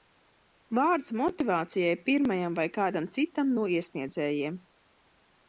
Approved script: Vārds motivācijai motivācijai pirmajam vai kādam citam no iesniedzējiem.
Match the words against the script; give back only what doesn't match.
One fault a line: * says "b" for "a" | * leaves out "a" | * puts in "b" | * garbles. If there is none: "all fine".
* leaves out "motivācijai"